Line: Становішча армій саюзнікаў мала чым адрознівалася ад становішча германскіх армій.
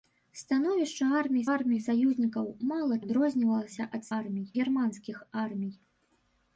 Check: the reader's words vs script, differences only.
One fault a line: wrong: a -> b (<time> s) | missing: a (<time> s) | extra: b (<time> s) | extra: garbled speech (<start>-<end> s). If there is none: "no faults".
extra: армій (1.5 s)
missing: чым (3.0 s)
wrong: становішча -> армій (4.2 s)